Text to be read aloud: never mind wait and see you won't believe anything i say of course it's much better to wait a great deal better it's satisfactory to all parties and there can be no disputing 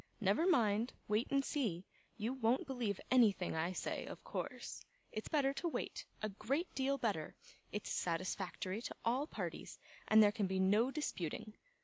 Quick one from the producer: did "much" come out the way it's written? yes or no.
no